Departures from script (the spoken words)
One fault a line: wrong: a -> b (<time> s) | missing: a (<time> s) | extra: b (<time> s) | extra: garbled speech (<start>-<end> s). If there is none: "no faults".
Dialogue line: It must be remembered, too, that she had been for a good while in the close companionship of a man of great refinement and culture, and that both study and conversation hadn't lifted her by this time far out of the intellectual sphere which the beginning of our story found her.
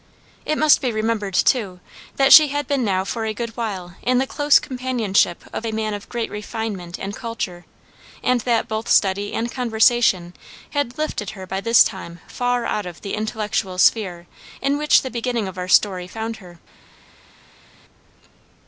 extra: now (2.8 s)
wrong: hadn't -> had (10.7 s)
extra: in (14.6 s)